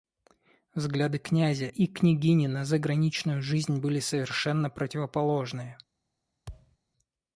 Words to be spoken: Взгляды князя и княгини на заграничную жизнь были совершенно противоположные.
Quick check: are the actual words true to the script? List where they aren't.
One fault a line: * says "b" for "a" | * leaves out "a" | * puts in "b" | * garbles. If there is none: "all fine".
all fine